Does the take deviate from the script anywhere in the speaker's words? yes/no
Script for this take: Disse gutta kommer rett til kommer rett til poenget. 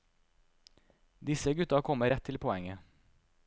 yes